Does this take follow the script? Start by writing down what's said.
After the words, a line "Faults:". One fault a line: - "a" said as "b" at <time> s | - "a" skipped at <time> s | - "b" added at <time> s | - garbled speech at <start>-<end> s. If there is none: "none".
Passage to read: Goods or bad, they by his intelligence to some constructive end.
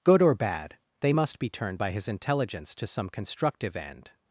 Good or bad, they must be turned by his intelligence to some constructive end.
Faults:
- "Goods" said as "Good" at 0.0 s
- "must be turned" added at 1.1 s